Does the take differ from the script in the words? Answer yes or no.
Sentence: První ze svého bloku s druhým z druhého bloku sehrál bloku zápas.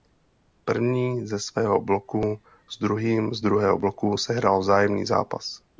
yes